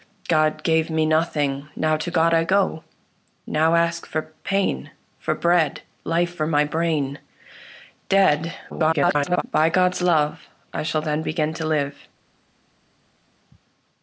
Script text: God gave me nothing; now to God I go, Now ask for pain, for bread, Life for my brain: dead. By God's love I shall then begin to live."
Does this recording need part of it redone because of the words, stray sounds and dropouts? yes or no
yes